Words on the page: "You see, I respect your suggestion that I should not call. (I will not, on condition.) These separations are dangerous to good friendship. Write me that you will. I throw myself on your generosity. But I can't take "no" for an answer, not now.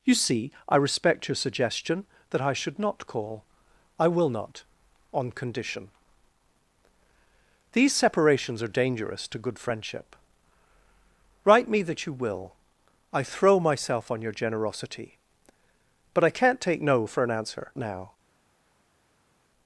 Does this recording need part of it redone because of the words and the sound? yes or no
yes